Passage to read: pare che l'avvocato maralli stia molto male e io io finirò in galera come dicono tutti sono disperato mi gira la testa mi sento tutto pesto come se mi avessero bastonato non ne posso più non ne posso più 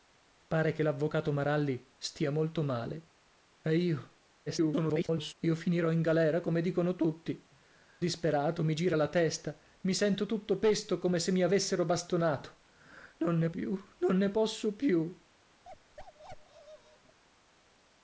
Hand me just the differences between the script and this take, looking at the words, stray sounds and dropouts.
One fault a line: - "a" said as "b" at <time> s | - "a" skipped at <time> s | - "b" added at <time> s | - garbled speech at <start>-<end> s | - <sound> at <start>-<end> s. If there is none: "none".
- garbled speech at 4.5-5.3 s
- "sono" skipped at 7.5 s
- "posso" skipped at 13.5 s
- bark at 15.6-17.2 s